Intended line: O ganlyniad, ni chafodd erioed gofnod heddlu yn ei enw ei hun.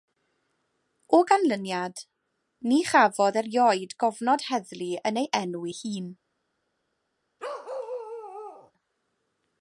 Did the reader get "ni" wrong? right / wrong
right